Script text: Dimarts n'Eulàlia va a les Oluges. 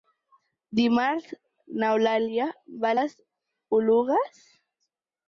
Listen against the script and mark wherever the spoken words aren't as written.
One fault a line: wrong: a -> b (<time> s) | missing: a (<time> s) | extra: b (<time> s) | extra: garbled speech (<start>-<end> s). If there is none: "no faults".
no faults